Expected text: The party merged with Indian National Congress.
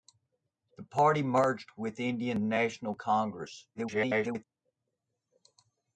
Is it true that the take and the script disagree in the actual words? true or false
true